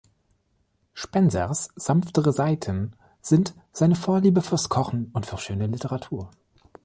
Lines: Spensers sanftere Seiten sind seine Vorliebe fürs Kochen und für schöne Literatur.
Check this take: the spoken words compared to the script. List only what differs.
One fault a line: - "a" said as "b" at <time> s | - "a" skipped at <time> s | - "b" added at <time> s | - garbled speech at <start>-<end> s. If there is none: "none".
none